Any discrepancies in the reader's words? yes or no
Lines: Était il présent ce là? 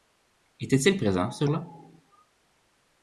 no